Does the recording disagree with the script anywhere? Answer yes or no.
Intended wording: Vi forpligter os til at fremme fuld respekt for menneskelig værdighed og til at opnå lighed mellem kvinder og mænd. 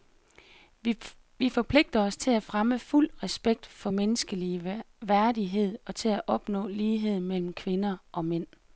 no